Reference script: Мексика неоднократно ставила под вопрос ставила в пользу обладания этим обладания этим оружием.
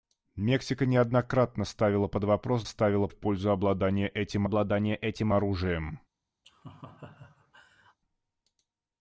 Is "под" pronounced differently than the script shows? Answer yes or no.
no